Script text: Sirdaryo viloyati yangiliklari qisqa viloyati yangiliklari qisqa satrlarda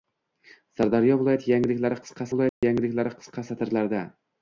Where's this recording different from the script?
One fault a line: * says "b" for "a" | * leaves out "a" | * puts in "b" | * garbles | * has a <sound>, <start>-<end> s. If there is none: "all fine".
* has a dropout, 2.5-2.6 s